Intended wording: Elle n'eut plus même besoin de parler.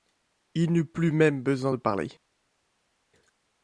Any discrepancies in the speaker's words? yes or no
yes